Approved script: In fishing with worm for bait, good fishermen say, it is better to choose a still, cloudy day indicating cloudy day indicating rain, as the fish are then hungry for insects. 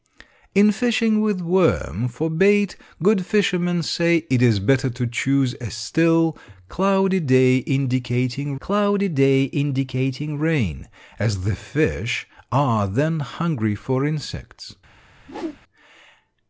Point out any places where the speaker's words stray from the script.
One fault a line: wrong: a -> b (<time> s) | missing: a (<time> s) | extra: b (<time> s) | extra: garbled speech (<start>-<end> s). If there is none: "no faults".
no faults